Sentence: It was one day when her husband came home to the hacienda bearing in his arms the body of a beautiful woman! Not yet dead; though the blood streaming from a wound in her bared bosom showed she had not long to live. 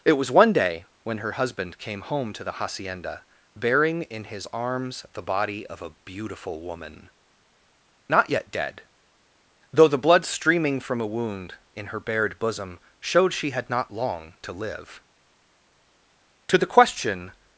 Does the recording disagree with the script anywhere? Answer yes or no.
yes